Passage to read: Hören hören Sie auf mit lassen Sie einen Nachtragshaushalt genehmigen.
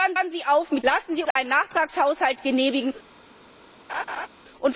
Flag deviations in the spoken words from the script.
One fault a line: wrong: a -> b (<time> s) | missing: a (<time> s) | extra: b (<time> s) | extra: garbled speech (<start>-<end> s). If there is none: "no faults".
no faults